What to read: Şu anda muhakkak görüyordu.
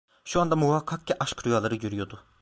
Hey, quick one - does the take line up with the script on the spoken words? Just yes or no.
no